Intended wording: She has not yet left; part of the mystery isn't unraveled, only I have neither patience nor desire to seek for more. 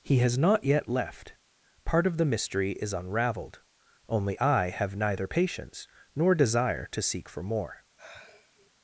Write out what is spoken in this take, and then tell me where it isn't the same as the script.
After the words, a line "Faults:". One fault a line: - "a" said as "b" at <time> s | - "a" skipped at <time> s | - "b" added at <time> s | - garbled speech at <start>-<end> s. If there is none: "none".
He has not yet left; part of the mystery is unraveled, only I have neither patience nor desire to seek for more.
Faults:
- "She" said as "He" at 0.0 s
- "isn't" said as "is" at 2.7 s